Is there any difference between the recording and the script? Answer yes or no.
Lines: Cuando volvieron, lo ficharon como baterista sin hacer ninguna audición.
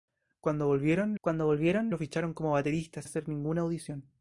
yes